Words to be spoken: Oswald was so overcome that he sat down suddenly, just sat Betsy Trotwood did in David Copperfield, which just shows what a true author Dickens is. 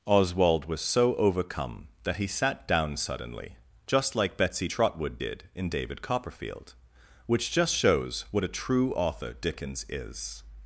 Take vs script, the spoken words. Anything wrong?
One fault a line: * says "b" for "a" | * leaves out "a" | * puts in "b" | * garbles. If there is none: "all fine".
* says "like" for "sat"